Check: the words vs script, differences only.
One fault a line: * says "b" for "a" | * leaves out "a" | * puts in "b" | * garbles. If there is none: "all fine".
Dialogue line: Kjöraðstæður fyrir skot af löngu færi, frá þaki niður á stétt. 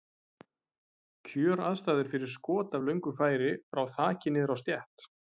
all fine